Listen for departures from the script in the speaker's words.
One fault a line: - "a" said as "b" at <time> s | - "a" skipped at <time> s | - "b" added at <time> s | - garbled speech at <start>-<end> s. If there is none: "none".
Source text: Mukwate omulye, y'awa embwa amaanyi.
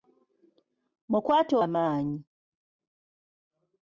- "omulye y'awa embwa" skipped at 1.5 s